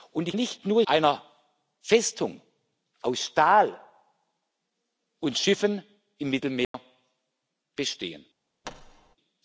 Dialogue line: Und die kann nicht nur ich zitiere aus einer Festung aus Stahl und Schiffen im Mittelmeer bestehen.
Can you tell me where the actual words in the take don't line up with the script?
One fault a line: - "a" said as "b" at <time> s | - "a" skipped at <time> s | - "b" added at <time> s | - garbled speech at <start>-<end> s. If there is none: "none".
- "kann" skipped at 0.3 s
- "ich zitiere aus" skipped at 0.8 s